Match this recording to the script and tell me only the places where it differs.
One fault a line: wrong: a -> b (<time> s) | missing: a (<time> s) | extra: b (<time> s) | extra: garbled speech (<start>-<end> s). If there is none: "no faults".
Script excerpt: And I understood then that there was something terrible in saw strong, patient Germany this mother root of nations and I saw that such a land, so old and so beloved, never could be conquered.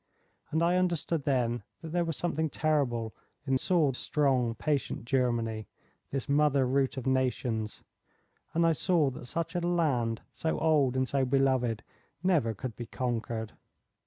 no faults